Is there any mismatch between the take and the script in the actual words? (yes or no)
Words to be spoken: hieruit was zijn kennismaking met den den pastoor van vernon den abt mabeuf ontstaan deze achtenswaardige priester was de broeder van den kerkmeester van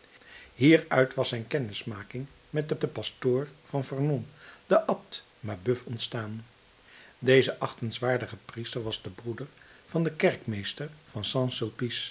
no